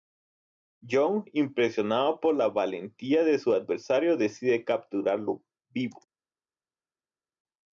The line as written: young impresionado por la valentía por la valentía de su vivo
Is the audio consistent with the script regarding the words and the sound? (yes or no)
no